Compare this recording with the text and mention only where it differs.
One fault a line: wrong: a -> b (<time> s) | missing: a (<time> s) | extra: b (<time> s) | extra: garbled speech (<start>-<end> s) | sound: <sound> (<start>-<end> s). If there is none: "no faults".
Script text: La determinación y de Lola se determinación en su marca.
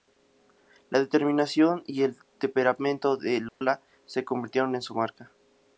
extra: el temperamento (2.0 s)
sound: dropout (3.5-3.6 s)
wrong: determinación -> convirtieron (4.2 s)